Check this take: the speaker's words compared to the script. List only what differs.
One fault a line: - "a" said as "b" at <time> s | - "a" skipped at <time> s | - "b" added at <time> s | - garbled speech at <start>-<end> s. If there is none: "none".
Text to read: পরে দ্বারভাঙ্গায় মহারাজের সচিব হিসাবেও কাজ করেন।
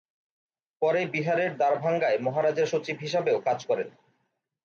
- "বিহারের" added at 1.0 s